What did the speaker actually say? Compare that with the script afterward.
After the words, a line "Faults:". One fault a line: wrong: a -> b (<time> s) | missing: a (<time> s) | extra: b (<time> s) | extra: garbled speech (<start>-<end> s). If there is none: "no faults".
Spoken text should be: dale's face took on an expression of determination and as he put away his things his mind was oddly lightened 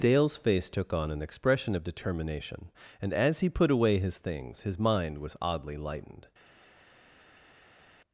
dale's face took on an expression of determination and as he put away his things his mind was oddly lightened
Faults:
no faults